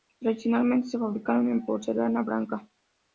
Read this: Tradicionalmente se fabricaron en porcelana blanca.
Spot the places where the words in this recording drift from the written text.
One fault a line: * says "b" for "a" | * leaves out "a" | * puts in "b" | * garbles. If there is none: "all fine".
all fine